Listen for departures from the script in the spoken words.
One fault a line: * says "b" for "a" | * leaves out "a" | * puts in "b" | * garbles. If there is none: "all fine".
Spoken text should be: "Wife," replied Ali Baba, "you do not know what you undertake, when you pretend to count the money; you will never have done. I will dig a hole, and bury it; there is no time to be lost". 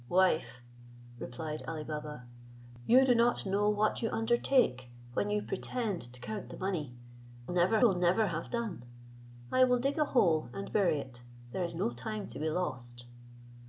* says "never" for "you"